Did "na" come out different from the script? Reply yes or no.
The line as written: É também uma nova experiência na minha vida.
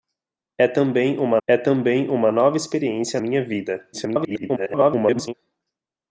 yes